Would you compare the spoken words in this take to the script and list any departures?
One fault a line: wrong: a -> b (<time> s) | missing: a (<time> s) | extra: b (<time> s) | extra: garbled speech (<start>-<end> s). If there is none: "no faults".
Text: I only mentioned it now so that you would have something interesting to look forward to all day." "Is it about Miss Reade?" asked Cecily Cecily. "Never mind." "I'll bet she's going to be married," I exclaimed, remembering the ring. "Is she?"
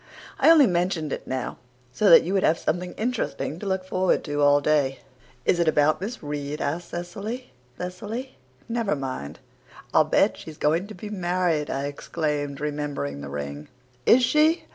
no faults